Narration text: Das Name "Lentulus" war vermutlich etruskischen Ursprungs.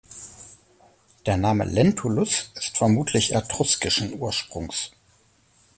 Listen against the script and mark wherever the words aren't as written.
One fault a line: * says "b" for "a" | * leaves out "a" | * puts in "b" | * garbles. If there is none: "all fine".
* says "Der" for "Das"
* says "ist" for "war"